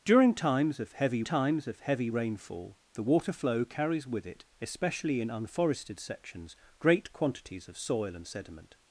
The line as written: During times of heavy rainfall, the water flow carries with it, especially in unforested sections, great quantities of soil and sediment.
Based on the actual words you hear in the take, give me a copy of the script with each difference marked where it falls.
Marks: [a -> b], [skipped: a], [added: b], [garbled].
During times of heavy [added: times of heavy] rainfall, the water flow carries with it, especially in unforested sections, great quantities of soil and sediment.